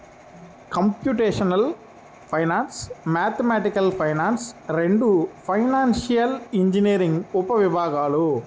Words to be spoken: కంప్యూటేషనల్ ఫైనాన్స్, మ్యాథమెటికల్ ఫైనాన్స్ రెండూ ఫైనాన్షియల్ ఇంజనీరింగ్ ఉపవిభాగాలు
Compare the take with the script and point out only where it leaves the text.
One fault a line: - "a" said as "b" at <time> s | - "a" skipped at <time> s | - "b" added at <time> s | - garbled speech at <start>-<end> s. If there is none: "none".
none